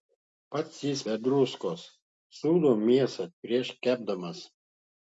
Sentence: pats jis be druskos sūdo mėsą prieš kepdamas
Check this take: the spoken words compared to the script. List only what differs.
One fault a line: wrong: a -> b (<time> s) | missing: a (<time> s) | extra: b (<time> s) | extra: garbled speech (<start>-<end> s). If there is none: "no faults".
no faults